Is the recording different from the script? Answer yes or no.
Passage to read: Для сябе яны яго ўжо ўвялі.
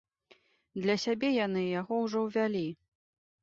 no